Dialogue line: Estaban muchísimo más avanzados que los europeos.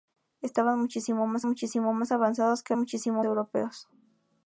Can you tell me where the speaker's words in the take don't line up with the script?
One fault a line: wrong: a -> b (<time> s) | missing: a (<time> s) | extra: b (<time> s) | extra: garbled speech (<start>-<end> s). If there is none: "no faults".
extra: muchísimo más (1.5 s)
wrong: los -> muchísimo (2.8 s)